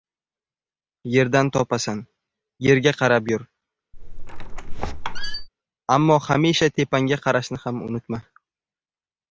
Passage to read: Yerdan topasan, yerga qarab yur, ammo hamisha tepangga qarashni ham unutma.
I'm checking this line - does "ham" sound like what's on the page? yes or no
yes